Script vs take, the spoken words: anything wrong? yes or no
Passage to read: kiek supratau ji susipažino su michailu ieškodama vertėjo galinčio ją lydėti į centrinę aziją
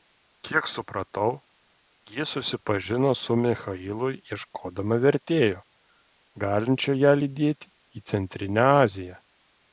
no